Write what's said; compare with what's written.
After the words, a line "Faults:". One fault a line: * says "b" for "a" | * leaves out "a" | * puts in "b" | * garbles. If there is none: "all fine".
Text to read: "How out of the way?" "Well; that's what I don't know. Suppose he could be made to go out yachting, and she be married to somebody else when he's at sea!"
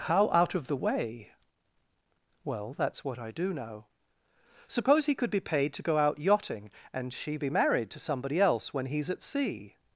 "How out of the way?" "Well; that's what I do know. Suppose he could be paid to go out yachting, and she be married to somebody else when he's at sea!"
Faults:
* says "do" for "don't"
* says "paid" for "made"